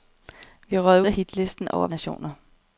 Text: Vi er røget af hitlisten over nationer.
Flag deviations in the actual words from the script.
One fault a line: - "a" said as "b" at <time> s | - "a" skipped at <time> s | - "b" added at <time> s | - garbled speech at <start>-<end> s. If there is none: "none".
none